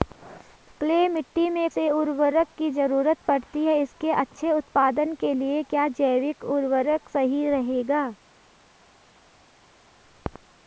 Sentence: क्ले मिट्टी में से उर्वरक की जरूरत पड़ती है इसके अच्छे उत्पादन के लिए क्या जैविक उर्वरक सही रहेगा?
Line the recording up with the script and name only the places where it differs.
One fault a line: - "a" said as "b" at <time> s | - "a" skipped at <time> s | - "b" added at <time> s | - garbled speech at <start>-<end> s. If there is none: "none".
none